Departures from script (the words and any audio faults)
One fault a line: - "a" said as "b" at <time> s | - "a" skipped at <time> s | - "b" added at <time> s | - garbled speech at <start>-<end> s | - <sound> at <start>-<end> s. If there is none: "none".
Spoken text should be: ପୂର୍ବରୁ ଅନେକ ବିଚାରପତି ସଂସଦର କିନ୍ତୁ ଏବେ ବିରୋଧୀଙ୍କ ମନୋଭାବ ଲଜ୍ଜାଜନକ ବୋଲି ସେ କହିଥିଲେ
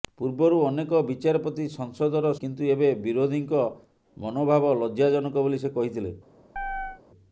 - chirp at 6.6-7.0 s